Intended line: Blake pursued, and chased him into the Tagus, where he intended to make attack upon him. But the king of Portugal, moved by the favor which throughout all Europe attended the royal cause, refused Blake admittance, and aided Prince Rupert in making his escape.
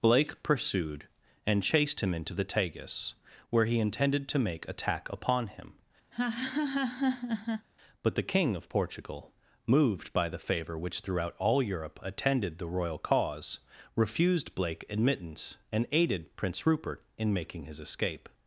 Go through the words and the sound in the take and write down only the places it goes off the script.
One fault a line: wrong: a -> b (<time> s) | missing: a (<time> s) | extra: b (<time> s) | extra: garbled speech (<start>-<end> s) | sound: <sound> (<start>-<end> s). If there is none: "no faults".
sound: laugh (6.1-7.7 s)